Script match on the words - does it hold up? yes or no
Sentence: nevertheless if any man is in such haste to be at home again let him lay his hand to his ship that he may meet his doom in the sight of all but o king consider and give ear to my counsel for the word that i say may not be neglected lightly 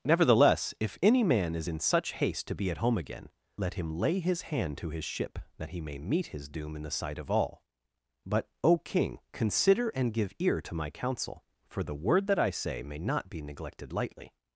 yes